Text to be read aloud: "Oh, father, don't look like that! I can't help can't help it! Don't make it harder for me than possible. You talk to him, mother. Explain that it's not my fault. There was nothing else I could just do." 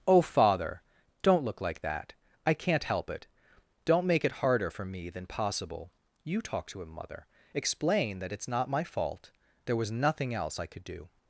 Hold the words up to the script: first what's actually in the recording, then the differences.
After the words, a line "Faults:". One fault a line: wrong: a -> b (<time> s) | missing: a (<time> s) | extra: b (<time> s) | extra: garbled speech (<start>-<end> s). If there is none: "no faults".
"Oh, father, don't look like that! I can't help it! Don't make it harder for me than possible. You talk to him, mother. Explain that it's not my fault. There was nothing else I could do."
Faults:
missing: can't help (3.1 s)
missing: just (10.8 s)